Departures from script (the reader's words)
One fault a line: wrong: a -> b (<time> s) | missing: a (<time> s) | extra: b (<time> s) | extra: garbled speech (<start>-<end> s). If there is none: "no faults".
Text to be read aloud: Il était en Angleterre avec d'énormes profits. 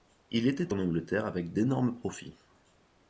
no faults